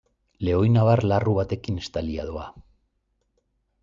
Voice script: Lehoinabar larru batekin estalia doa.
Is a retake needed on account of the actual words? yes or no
no